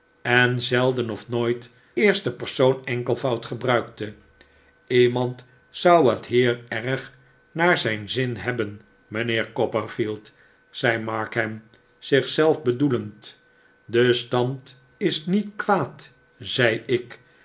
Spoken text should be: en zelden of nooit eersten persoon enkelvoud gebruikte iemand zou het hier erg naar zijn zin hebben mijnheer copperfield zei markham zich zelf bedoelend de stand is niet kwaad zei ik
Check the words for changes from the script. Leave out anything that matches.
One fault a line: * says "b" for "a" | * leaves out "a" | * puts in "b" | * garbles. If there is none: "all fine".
all fine